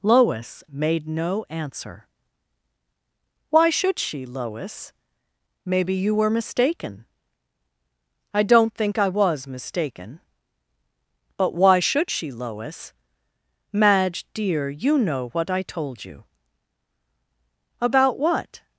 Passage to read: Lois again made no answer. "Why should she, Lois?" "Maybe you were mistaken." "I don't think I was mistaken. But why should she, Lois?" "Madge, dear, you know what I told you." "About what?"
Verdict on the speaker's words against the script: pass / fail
fail